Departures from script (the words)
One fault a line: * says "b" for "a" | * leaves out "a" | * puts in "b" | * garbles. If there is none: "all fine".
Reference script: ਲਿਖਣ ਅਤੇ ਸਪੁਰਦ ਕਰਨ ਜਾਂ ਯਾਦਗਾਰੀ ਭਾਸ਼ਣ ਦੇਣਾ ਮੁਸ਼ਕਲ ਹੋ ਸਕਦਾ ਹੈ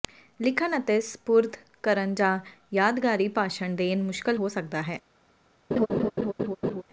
all fine